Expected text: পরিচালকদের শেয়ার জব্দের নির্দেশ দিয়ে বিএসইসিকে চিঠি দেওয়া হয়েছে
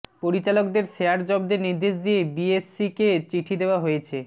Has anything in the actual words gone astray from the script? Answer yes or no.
no